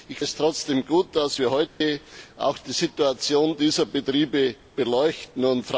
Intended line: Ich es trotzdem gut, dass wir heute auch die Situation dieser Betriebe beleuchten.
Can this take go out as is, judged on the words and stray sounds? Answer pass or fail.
fail